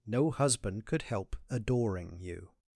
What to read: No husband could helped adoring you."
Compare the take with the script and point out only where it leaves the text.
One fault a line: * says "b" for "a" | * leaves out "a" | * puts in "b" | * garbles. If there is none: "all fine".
* says "help" for "helped"